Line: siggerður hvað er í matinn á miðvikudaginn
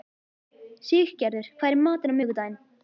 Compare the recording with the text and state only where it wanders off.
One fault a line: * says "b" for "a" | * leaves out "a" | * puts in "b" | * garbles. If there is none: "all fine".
all fine